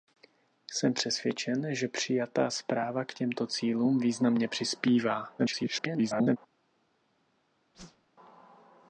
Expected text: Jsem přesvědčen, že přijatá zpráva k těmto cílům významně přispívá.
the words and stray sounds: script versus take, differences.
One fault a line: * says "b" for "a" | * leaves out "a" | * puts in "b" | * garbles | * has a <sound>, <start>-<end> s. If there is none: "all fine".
* garbles
* has a whoosh, 7.7-8.1 s